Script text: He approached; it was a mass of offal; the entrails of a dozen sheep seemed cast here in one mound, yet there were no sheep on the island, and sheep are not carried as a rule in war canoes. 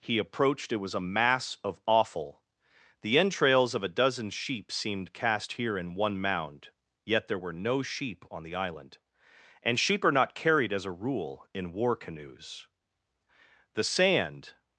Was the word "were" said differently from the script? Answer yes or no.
no